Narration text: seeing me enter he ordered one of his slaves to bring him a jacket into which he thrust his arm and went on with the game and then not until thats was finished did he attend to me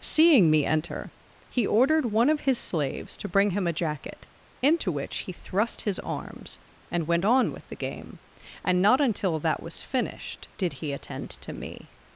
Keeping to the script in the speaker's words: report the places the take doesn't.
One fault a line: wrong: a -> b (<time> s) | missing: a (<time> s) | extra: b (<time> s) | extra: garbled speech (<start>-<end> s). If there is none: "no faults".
wrong: arm -> arms (6.0 s)
missing: then (8.8 s)
wrong: thats -> that (9.4 s)